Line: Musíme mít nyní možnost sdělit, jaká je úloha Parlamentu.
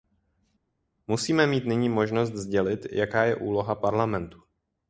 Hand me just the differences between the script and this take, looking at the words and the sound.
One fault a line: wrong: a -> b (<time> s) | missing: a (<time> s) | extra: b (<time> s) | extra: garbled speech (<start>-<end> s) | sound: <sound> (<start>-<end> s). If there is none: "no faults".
no faults